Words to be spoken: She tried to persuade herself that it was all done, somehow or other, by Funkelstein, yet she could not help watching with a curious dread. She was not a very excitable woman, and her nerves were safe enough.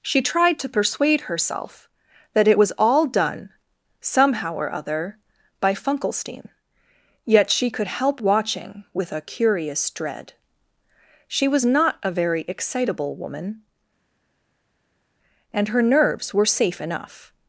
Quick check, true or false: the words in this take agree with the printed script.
false